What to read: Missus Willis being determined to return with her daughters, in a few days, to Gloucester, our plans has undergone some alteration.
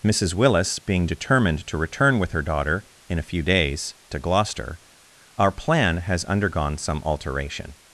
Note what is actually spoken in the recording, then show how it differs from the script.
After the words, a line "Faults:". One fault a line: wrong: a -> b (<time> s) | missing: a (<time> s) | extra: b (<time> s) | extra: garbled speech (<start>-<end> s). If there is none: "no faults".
Missus Willis being determined to return with her daughter, in a few days, to Gloucester, our plan has undergone some alteration.
Faults:
wrong: daughters -> daughter (2.4 s)
wrong: plans -> plan (5.5 s)